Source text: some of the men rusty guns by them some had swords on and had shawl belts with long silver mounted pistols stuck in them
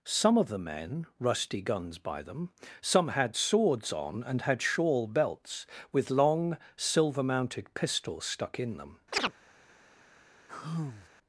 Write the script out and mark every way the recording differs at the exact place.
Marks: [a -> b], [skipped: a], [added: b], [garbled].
some of the men rusty guns by them some had swords on and had shawl belts with long silver mounted pistols stuck in them